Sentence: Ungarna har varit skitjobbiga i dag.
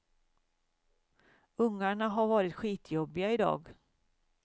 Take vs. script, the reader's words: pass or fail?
pass